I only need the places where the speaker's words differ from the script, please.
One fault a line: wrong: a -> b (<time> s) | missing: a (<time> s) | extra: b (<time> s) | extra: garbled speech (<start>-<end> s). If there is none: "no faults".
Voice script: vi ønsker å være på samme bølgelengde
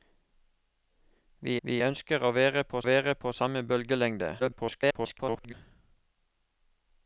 extra: vi (1.6 s)
extra: være på (2.8 s)
extra: garbled speech (4.4-5.5 s)